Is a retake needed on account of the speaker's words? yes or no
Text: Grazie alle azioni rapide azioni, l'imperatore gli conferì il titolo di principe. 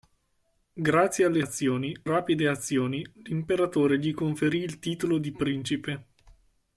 no